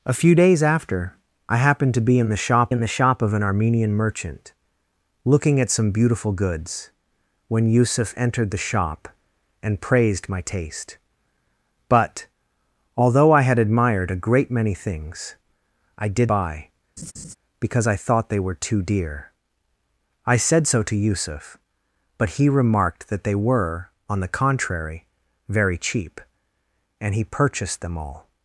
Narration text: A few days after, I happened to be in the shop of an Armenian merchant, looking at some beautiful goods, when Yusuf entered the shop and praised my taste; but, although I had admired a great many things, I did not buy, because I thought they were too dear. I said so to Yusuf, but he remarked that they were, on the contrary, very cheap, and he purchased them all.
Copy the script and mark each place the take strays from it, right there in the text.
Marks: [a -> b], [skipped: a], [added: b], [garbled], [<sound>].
A few days after, I happened to be in the shop [added: in the shop] of an Armenian merchant, looking at some beautiful goods, when Yusuf entered the shop and praised my taste; but, although I had admired a great many things, I did [skipped: not] buy, [laugh] because I thought they were too dear. I said so to Yusuf, but he remarked that they were, on the contrary, very cheap, and he purchased them all.